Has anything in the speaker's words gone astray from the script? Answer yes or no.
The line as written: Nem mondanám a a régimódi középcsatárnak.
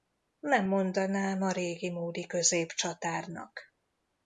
yes